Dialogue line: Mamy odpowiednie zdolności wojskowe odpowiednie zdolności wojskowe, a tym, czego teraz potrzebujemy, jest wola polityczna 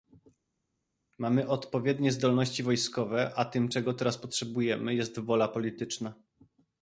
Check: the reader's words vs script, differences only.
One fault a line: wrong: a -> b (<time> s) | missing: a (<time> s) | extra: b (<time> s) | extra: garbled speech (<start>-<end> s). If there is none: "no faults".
missing: odpowiednie zdolności wojskowe (3.3 s)